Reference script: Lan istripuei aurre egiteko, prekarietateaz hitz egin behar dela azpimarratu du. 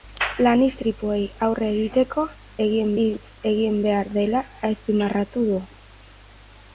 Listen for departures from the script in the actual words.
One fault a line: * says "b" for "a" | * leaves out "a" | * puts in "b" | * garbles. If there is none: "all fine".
* says "egin" for "prekarietateaz"